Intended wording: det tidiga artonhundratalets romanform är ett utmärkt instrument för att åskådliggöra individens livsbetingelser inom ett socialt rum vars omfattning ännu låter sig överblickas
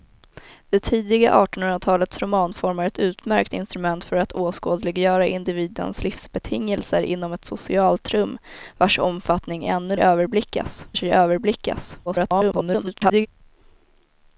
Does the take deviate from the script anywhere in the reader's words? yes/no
yes